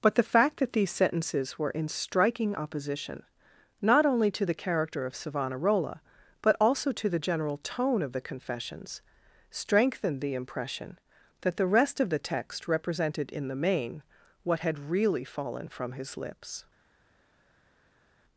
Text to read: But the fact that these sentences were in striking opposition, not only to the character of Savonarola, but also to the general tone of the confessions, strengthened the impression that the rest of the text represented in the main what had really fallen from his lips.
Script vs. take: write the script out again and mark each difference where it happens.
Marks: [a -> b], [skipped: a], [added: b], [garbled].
But the fact that these sentences were in striking opposition, not only to the character of Savonarola, but also to the general tone of the confessions, strengthened the impression that the rest of the text represented in the main what had really fallen from his lips.